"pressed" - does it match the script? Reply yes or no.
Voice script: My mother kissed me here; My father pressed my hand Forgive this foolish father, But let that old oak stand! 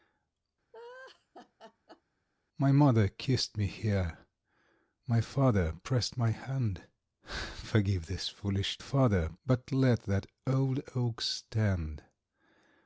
yes